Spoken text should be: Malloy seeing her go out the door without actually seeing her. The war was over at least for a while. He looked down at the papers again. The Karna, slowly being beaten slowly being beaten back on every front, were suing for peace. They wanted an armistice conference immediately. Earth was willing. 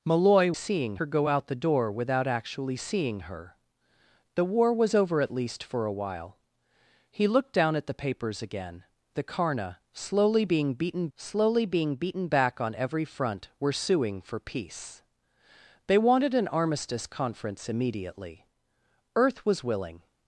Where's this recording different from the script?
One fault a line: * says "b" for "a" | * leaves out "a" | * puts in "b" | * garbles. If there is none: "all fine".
all fine